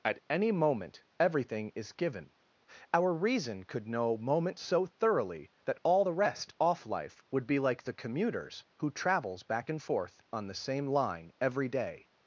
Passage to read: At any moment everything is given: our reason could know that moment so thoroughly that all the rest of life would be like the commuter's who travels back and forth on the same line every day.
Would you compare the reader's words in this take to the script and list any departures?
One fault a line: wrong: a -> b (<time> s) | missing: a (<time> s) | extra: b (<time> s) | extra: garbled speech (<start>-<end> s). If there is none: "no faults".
missing: that (4.2 s)
wrong: of -> off (6.6 s)